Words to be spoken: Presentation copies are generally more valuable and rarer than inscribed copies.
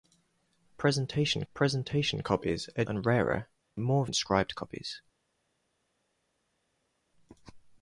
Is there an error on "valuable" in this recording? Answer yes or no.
yes